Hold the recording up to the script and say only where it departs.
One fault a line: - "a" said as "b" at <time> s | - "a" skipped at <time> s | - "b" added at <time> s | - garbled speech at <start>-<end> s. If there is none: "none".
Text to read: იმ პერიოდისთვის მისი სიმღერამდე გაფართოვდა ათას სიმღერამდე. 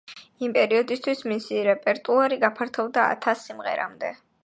- "სიმღერამდე" said as "რეპერტუარი" at 1.7 s